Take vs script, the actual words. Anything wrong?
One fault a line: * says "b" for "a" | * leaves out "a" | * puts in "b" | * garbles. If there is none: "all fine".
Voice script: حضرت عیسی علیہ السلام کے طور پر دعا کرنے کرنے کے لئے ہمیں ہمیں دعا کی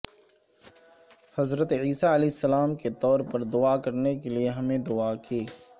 * leaves out "کرنے"
* leaves out "ہمیں"